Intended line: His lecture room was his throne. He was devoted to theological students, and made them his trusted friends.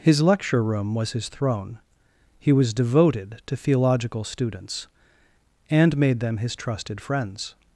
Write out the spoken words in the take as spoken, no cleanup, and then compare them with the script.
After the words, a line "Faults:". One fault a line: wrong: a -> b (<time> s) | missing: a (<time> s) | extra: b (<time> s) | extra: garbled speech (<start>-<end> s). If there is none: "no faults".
His lecture room was his throne. He was devoted to theological students, and made them his trusted friends.
Faults:
no faults